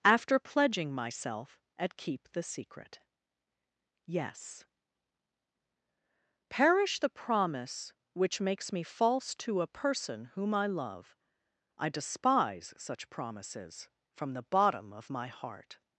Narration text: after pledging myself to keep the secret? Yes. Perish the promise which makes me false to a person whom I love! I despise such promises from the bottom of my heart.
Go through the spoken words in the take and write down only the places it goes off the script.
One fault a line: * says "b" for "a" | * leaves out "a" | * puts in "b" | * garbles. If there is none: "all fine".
* says "at" for "to"